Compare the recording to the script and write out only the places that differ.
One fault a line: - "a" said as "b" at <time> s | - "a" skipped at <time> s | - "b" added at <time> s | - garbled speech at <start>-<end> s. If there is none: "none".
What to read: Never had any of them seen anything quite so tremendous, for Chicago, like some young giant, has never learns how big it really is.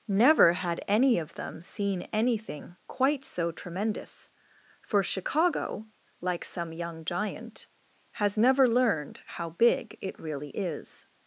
- "learns" said as "learned" at 8.7 s